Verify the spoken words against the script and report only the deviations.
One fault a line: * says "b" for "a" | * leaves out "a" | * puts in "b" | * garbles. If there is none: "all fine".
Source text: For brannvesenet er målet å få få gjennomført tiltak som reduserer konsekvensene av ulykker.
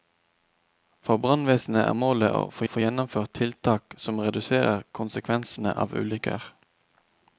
all fine